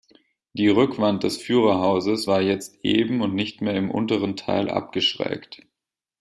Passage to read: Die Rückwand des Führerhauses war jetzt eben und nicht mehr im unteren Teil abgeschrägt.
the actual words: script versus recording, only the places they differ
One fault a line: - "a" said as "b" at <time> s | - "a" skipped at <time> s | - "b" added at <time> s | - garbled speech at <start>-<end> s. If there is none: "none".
none